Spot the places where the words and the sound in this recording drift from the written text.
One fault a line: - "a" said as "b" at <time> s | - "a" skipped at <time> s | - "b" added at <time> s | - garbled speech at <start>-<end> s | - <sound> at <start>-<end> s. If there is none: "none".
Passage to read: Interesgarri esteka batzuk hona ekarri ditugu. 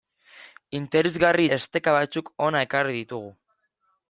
none